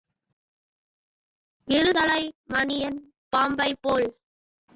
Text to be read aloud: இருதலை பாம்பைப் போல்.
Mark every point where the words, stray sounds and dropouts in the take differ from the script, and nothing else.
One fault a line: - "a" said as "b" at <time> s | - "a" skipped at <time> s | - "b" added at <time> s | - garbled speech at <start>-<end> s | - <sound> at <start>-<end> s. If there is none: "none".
- "மணியன்" added at 2.5 s